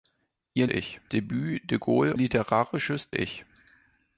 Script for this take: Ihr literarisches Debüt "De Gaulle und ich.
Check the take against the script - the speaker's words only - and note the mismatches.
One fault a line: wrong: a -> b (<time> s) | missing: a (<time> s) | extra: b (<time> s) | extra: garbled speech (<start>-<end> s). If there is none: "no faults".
wrong: literarisches -> ich (0.7 s)
wrong: und -> literarisches (2.1 s)